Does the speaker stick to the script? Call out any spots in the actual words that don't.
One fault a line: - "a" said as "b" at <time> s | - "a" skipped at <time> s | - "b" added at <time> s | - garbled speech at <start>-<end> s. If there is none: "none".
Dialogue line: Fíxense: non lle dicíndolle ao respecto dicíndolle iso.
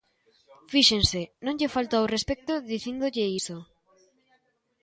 - "dicíndolle" said as "falto" at 1.8 s